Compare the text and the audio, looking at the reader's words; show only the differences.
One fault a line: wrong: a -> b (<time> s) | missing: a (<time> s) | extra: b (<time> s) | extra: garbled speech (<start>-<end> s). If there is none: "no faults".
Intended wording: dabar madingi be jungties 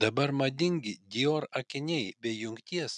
extra: dior akiniai (1.1 s)